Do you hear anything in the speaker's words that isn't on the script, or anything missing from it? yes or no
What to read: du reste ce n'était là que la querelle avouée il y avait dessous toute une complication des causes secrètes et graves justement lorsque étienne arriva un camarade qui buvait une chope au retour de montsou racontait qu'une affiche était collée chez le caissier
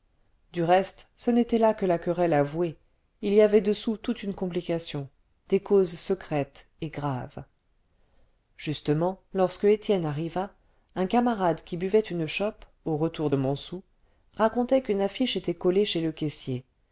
no